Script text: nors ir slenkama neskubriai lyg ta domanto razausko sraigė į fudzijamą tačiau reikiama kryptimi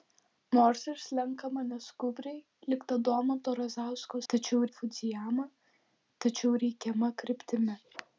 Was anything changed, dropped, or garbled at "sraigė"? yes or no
yes